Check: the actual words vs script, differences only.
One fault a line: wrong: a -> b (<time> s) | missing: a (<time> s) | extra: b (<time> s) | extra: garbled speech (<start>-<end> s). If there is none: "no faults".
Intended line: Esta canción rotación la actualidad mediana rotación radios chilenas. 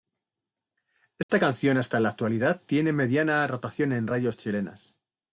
wrong: rotación -> hasta (1.8 s)
extra: tiene (2.7 s)
extra: en (3.9 s)